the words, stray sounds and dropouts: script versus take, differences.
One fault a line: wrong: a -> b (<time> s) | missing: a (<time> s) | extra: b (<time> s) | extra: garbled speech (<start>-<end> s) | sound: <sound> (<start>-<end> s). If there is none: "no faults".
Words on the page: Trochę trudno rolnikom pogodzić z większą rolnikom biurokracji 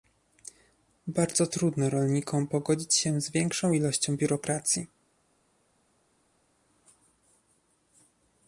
wrong: Trochę -> Bardzo (1.1 s)
extra: się (2.9 s)
wrong: rolnikom -> ilością (3.7 s)